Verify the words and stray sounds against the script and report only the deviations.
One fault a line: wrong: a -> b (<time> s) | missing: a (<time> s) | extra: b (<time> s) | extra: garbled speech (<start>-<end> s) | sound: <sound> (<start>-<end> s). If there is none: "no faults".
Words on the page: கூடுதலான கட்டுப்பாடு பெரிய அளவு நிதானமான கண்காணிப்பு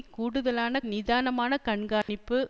missing: கட்டுப்பாடு பெரிய அளவு (0.8 s)
sound: dropout (2.0-2.1 s)